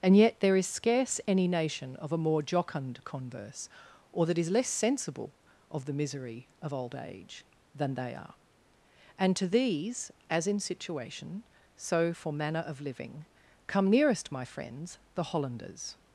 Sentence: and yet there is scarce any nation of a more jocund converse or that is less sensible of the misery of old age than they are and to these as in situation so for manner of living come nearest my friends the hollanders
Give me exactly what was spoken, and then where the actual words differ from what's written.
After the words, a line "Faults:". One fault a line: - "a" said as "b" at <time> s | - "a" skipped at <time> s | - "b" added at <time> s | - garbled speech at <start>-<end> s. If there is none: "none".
and yet there is scarce any nation of a more jocund converse or that is less sensible of the misery of old age than they are and to these as in situation so for manner of living come nearest my friends the hollanders
Faults:
none